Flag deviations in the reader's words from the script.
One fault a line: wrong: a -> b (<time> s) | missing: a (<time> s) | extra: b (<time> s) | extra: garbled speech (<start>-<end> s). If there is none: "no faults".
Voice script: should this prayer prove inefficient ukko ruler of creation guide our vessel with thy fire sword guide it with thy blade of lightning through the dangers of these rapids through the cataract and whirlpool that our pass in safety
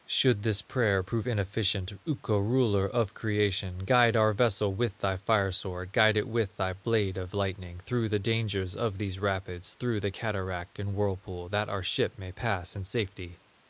extra: ship may (11.8 s)